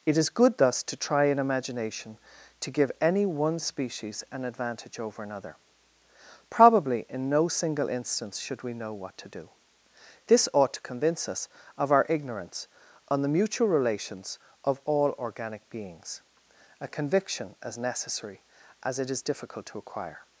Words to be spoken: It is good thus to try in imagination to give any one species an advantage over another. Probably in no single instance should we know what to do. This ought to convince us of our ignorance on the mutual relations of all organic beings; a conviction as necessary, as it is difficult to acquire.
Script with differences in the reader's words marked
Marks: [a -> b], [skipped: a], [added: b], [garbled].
It is good thus to try in imagination to give any one species an advantage over another. Probably in no single instance should we know what to do. This ought to convince us of our ignorance on the mutual relations of all organic beings; a conviction as necessary, as it is difficult to acquire.